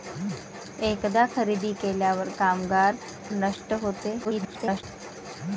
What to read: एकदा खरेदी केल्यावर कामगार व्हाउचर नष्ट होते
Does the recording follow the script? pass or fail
fail